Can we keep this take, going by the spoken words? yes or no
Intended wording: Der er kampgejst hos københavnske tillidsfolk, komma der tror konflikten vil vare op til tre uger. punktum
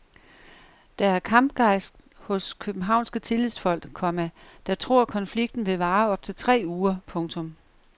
yes